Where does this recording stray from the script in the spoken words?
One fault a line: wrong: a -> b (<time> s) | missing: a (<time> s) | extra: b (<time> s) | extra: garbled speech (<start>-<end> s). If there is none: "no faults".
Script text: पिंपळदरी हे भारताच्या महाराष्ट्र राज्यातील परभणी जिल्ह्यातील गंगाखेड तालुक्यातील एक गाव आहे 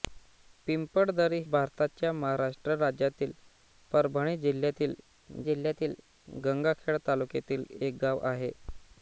missing: हे (1.4 s)
extra: जिल्ह्यातील (5.4 s)